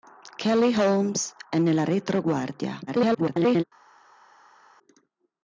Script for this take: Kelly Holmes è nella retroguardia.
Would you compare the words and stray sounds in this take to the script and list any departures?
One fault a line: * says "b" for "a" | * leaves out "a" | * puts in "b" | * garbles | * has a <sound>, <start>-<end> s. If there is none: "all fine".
* garbles